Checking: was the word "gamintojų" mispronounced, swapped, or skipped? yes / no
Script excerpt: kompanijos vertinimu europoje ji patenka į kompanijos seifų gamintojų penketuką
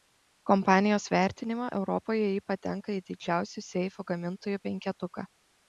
no